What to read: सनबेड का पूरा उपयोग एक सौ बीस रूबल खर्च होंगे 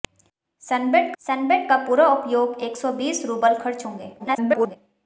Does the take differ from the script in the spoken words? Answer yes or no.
yes